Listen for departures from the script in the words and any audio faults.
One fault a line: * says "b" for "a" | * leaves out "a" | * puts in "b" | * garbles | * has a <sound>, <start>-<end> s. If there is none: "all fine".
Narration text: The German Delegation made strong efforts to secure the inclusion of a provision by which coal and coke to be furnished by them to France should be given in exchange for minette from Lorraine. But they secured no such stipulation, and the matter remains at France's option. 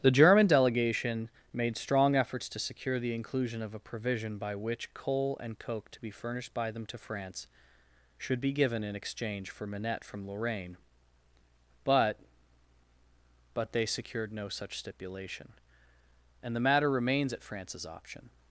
* puts in "But"